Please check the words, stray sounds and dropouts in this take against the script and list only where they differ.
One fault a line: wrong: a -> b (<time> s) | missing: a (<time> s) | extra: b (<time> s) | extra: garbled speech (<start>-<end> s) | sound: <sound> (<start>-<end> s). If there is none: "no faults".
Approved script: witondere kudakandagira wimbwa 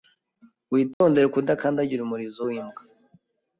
sound: dropout (0.9-1.0 s)
extra: umurizo (2.0 s)